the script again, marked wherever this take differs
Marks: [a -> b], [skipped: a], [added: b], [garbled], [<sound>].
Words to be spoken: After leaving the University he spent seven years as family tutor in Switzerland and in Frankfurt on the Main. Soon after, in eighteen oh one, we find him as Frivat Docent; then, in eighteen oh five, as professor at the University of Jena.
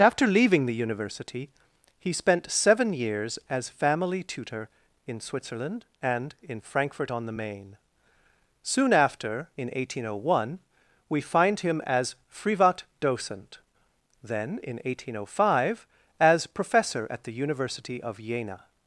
After leaving the University he spent seven years as family tutor in Switzerland and in Frankfurt on the Main. Soon after, in eighteen oh one, we find him as Frivat Docent; then, in eighteen oh five, as professor at the University of Jena.